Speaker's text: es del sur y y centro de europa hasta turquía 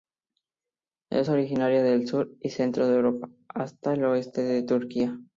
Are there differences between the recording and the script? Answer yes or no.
yes